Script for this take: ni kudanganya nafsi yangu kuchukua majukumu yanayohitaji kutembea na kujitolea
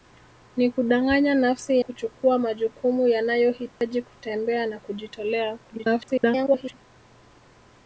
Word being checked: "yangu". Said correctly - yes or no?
no